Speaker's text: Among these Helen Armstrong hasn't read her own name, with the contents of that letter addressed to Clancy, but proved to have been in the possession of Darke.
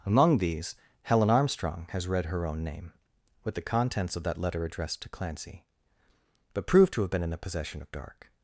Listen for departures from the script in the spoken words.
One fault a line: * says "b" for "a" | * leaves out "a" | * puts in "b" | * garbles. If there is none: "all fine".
* says "has" for "hasn't"